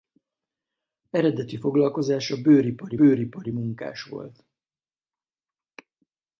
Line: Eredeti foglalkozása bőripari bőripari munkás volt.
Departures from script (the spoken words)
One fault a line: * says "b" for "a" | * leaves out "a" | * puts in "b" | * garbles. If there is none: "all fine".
all fine